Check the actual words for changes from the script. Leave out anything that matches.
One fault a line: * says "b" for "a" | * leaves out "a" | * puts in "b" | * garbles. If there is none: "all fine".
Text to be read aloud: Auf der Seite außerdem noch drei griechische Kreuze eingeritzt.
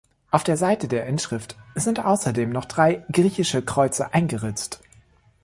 * puts in "der Inschrift sind"